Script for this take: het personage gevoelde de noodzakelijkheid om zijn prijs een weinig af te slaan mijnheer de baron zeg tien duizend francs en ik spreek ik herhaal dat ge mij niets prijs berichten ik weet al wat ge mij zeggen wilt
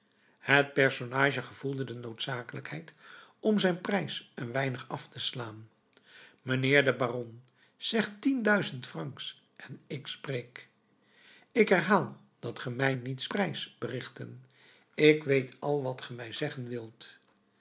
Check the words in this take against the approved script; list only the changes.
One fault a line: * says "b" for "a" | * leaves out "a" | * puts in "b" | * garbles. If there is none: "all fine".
all fine